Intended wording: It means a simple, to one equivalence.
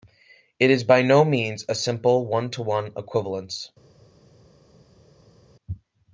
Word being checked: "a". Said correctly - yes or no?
yes